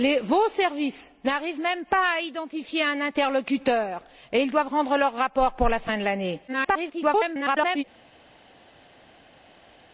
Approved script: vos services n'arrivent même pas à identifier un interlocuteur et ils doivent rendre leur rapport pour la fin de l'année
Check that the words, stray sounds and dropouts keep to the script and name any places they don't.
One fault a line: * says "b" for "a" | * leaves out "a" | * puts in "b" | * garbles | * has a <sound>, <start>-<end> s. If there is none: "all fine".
* garbles